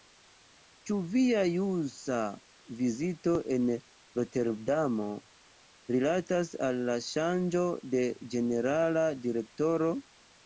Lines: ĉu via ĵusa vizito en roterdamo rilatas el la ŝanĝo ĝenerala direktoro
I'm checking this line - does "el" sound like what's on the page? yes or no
no